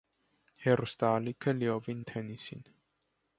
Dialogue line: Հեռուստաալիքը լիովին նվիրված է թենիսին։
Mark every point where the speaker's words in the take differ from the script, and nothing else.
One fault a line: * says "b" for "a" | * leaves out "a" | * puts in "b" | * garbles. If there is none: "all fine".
* leaves out "նվիրված"